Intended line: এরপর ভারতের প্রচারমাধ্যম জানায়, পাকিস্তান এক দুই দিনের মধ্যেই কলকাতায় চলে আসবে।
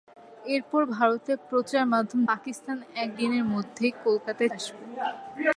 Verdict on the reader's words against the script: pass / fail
fail